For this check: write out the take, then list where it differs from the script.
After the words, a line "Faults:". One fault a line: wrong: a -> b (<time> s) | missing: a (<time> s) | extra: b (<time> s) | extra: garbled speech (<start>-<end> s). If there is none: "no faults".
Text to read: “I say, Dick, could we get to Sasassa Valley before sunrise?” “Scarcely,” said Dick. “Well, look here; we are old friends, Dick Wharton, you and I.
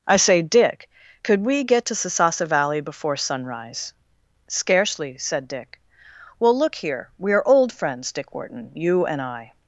“I say, Dick, could we get to Sasassa Valley before sunrise?” “Scarcely,” said Dick. “Well, look here; we are old friends, Dick Wharton, you and I.
Faults:
no faults